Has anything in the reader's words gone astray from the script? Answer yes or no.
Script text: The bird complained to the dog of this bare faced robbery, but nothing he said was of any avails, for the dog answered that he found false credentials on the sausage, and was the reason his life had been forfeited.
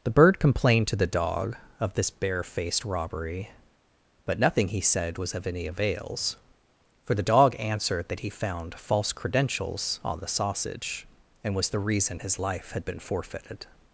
no